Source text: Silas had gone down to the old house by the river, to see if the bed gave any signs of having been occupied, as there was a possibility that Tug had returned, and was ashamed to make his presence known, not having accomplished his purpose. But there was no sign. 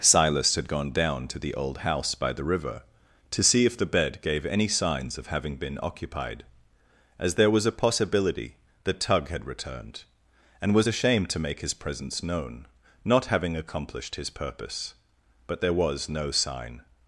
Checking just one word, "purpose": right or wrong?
right